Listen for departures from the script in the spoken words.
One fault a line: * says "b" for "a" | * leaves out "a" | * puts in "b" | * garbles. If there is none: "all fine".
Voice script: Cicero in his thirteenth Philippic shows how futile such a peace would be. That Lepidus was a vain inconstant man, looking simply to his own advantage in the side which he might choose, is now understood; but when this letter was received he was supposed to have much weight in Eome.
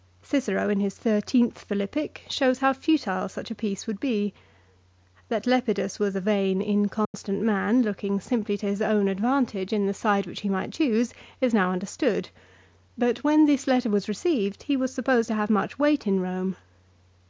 all fine